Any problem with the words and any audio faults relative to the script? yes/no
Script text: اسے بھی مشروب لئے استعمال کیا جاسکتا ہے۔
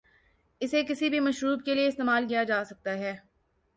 yes